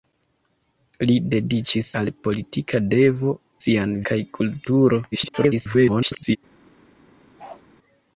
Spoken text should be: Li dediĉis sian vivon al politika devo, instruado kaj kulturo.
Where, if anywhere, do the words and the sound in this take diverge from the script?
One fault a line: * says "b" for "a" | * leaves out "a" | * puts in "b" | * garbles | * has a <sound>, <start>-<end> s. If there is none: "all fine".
* leaves out "sian vivon"
* says "sian" for "instruado"
* garbles
* has a bark, 7.4-7.6 s